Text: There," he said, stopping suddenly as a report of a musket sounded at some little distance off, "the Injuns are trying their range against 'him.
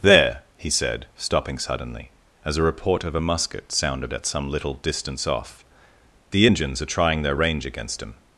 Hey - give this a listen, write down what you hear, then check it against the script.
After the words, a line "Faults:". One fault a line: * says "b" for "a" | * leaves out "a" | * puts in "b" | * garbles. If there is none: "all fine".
There," he said, stopping suddenly as a report of a musket sounded at some little distance off, "the Injuns are trying their range against 'him.
Faults:
all fine